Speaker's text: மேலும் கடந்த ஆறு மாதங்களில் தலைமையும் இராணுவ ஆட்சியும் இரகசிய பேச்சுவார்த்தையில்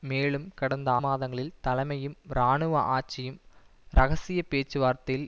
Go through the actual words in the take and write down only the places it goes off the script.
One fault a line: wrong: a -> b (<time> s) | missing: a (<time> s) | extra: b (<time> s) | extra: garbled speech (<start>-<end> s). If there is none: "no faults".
missing: ஆறு (0.9 s)